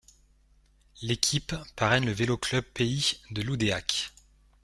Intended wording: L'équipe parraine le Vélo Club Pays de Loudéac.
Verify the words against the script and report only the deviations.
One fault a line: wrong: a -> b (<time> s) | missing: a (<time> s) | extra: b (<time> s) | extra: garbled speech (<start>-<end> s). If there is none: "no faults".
no faults